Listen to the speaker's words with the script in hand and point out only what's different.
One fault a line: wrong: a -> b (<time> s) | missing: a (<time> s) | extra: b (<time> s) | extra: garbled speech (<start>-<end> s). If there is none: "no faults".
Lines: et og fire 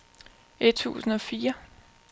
extra: tusind (0.7 s)